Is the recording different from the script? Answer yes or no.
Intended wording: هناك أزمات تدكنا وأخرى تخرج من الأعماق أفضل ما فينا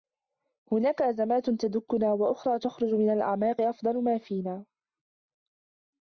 no